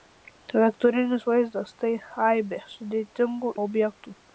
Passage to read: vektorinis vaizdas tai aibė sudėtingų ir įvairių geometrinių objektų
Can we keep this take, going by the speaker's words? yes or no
no